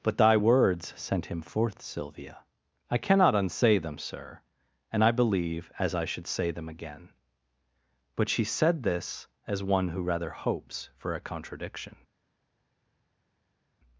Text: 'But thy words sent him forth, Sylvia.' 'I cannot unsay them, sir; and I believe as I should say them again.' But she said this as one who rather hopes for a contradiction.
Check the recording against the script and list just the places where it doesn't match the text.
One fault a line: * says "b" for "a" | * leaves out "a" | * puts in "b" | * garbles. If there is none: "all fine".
all fine